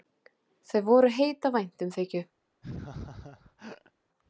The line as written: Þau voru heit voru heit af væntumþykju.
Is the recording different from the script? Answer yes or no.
yes